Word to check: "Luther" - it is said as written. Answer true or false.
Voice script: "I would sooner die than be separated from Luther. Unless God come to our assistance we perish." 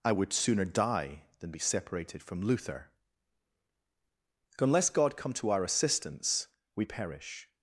true